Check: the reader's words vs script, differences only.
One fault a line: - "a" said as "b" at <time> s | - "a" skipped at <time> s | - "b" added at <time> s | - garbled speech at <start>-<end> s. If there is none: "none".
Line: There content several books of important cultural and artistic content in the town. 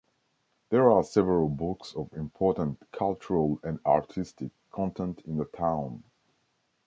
- "content" said as "are" at 0.9 s